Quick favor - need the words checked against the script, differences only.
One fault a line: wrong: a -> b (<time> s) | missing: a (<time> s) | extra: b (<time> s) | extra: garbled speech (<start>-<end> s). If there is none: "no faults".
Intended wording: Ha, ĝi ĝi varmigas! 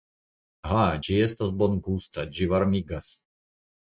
extra: estas bongusta (1.2 s)